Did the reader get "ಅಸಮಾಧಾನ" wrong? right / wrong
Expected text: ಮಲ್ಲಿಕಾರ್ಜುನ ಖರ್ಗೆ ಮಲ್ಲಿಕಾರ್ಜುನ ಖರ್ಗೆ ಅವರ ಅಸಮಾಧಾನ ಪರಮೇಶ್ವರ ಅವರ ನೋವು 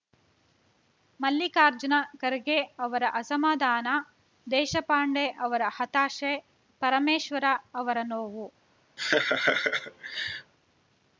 wrong